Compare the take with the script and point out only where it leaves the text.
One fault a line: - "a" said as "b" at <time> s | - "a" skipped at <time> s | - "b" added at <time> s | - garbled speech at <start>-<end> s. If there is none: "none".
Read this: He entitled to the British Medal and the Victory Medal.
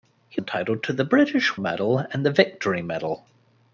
none